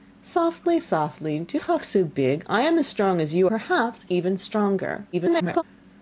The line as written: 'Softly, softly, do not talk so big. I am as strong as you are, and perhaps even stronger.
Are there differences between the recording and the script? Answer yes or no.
yes